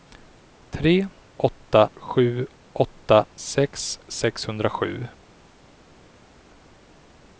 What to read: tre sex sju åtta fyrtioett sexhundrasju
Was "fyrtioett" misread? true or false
true